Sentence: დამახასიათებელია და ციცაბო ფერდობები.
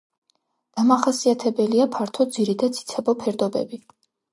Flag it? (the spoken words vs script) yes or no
yes